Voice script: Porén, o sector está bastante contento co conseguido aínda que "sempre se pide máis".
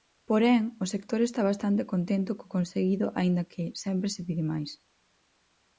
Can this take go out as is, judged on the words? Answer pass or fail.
pass